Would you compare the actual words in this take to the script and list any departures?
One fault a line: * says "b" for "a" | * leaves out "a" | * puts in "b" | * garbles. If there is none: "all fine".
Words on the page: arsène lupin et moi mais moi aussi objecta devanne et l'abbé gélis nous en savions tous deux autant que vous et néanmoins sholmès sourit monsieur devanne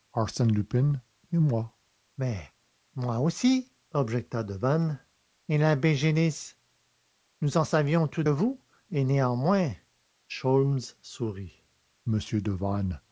* leaves out "deux autant que"